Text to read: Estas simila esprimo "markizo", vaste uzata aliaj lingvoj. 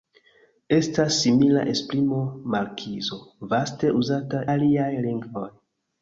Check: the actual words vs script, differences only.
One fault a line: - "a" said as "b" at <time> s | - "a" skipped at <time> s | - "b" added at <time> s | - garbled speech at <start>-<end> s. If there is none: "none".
none